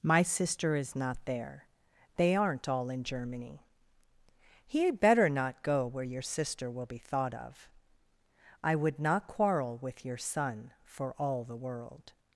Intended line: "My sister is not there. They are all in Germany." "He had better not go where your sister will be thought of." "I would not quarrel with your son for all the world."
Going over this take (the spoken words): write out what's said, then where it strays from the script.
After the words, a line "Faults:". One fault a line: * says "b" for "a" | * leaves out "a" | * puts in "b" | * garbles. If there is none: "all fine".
"My sister is not there. They aren't all in Germany." "He had better not go where your sister will be thought of." "I would not quarrel with your son for all the world."
Faults:
* says "aren't" for "are"